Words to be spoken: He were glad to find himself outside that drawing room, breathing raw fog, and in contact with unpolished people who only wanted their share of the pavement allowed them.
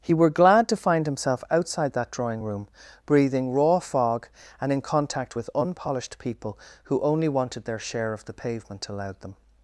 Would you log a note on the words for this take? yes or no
no